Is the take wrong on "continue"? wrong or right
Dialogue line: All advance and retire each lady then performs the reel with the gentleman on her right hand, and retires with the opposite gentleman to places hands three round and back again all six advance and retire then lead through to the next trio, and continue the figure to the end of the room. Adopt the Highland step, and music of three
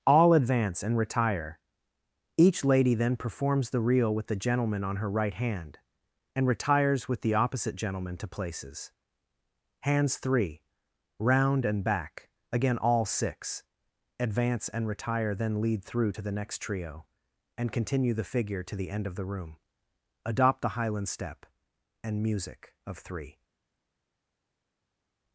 right